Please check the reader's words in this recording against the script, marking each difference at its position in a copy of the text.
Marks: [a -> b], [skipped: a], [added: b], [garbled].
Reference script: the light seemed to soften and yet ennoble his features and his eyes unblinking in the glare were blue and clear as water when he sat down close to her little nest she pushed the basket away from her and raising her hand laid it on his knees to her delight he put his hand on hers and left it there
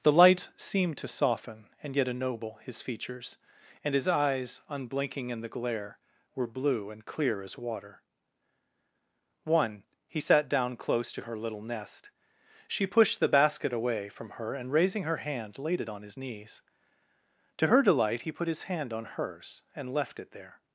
the light seemed to soften and yet ennoble his features and his eyes unblinking in the glare were blue and clear as water [when -> one] he sat down close to her little nest she pushed the basket away from her and raising her hand laid it on his knees to her delight he put his hand on hers and left it there